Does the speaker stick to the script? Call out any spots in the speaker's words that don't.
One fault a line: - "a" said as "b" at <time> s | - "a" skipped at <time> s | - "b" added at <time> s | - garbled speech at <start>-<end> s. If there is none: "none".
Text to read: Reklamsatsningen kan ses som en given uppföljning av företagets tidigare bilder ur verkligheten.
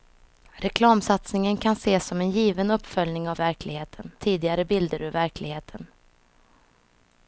- "företagets" said as "verkligheten" at 3.4 s